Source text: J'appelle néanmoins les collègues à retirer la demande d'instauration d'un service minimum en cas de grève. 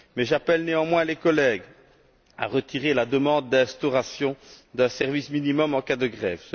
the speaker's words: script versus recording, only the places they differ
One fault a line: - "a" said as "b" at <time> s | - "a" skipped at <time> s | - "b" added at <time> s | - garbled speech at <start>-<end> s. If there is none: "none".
none